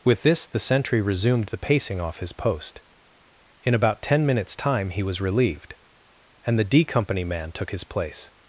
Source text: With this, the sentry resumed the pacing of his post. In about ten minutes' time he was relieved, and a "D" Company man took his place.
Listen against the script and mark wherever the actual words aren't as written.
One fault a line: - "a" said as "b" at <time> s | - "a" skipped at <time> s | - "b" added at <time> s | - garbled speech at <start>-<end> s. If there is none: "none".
- "of" said as "off" at 2.0 s
- "a" said as "the" at 6.6 s